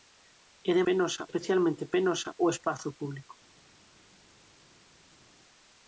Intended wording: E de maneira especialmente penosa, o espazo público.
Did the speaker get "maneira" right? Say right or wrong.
wrong